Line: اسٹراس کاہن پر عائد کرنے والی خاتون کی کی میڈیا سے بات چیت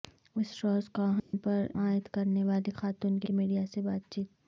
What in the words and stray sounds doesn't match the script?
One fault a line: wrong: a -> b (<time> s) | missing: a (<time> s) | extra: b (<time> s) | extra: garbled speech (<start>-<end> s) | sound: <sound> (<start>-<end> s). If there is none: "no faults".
sound: dropout (1.2-1.3 s)